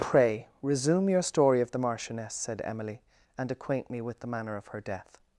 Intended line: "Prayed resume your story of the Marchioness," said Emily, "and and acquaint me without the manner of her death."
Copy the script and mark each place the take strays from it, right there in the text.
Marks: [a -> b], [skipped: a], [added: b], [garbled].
["Prayed -> Pray] resume your story of the Marchioness," said Emily, "and [skipped: and] acquaint me [without -> with] the manner of her death."